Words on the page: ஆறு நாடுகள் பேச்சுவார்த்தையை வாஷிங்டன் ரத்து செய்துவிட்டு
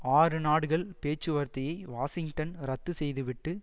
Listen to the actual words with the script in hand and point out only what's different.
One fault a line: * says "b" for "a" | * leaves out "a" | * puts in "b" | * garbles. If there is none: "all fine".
all fine